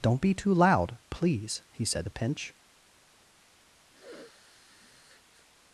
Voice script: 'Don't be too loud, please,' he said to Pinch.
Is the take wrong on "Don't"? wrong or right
right